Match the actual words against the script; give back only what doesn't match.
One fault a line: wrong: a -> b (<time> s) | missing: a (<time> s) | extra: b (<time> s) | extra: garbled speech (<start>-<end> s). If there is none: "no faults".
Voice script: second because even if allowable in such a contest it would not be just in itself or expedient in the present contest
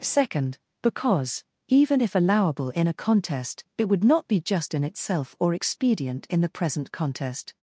missing: such (2.9 s)